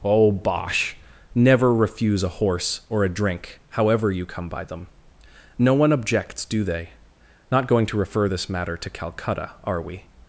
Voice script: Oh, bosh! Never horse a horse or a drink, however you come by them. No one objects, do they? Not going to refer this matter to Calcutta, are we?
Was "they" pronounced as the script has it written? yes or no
yes